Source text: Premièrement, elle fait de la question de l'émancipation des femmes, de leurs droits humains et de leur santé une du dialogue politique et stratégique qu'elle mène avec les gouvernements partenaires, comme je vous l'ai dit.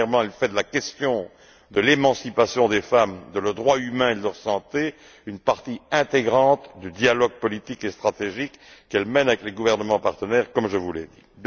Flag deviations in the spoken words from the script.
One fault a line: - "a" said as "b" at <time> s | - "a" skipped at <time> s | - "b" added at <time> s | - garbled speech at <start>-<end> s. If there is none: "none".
- "partie intégrante" added at 5.4 s